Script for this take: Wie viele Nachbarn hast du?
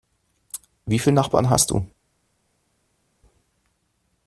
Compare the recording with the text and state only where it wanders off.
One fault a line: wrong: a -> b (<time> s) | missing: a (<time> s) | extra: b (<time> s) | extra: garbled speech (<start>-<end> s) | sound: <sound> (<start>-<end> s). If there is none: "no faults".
no faults